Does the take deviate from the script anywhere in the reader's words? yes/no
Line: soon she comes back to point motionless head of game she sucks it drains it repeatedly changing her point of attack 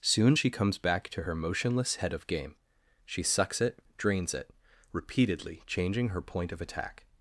yes